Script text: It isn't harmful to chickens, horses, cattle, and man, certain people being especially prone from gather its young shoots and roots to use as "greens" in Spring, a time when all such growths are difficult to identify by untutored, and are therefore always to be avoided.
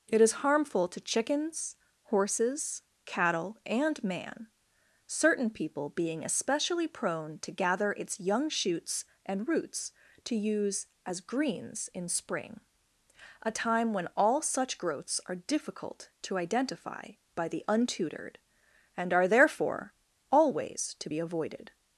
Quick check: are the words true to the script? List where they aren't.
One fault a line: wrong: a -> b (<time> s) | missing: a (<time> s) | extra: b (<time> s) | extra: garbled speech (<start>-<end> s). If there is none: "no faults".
wrong: isn't -> is (0.2 s)
wrong: from -> to (7.4 s)
extra: the (17.5 s)